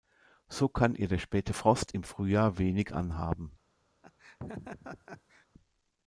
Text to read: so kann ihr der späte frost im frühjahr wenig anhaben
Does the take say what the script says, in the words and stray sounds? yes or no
no